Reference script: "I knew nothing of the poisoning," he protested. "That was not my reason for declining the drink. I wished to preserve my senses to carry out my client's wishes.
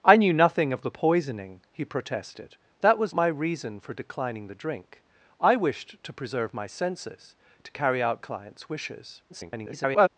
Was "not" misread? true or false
true